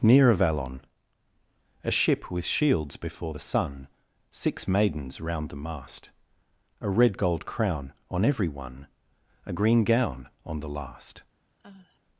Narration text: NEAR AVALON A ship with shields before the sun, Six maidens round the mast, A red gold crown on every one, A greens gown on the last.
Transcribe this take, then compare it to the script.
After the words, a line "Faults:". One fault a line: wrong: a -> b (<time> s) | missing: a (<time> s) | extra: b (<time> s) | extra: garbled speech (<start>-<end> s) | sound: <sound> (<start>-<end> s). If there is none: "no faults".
NEAR AVALON A ship with shields before the sun, Six maidens round the mast, A red gold crown on every one, A green gown on the last.
Faults:
wrong: greens -> green (9.5 s)
sound: sigh (11.6-12.0 s)